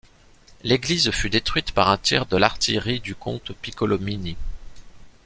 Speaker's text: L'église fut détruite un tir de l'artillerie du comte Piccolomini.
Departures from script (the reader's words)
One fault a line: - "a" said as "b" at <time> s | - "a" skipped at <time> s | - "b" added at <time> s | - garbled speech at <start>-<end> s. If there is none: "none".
- "par" added at 1.7 s